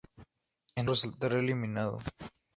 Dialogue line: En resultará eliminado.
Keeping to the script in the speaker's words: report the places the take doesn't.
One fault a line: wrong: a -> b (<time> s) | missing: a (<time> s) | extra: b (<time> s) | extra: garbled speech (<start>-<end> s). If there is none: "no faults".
no faults